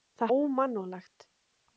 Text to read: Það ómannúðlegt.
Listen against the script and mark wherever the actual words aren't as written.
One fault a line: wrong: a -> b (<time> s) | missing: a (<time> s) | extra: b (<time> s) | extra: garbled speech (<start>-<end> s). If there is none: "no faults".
no faults